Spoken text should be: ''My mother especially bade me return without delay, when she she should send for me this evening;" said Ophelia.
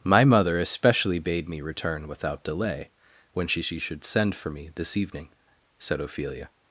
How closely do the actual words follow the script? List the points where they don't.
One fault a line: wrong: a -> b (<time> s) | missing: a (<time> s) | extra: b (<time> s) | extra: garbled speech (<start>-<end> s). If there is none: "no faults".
no faults